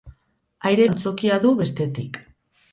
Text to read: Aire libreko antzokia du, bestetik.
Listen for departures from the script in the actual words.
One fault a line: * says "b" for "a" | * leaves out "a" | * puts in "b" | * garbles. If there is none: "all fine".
* leaves out "libreko"